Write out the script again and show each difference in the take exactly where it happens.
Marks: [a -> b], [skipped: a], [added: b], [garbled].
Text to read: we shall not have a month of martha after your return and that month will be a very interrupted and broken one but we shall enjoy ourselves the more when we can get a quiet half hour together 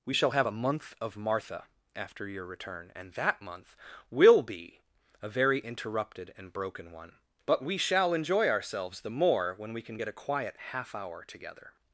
we shall [skipped: not] have a month of martha after your return and that month will be a very interrupted and broken one but we shall enjoy ourselves the more when we can get a quiet half hour together